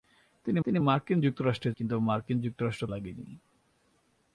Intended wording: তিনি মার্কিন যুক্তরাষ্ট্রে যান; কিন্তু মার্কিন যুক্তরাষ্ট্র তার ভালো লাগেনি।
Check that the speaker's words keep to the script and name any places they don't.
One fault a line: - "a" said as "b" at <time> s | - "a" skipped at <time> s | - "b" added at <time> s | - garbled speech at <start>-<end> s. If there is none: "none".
- "তিনি" added at 0.6 s
- "যান" skipped at 1.7 s
- "তার ভালো" skipped at 2.8 s